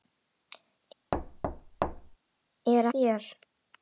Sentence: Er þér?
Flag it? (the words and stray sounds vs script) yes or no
yes